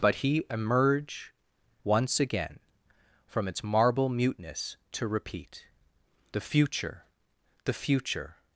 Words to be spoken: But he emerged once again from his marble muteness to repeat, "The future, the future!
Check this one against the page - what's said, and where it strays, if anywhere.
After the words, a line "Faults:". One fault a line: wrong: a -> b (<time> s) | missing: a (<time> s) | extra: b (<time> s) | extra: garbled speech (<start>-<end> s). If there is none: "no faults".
But he emerge once again from its marble muteness to repeat, "The future, the future!
Faults:
wrong: emerged -> emerge (0.5 s)
wrong: his -> its (3.5 s)